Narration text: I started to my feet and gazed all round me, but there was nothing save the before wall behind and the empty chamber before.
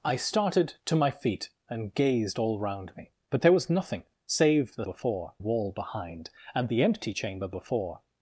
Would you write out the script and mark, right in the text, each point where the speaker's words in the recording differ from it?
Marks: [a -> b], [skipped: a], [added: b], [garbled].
I started to my feet and gazed all round me, but there was nothing save the before wall behind and the empty chamber before.